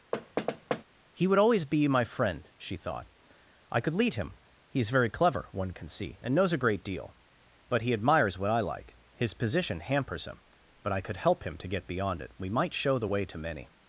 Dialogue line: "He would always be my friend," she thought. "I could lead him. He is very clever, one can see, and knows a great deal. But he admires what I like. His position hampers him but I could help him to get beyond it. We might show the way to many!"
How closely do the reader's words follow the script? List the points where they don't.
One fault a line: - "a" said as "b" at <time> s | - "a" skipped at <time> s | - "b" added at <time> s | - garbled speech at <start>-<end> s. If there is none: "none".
none